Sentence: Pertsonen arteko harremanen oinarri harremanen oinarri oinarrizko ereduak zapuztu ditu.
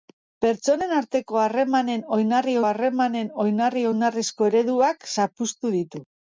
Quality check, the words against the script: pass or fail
pass